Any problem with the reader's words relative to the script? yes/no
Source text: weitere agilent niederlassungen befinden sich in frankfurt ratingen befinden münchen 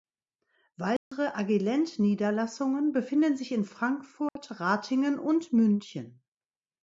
yes